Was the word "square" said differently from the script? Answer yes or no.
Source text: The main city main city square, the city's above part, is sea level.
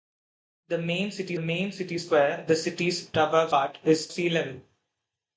no